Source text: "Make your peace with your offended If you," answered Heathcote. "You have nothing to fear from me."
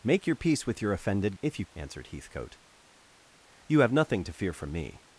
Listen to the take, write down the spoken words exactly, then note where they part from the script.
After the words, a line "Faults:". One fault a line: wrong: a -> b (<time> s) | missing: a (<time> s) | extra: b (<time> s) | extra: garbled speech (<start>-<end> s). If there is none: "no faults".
"Make your peace with your offended If you," answered Heathcote. "You have nothing to fear from me."
Faults:
no faults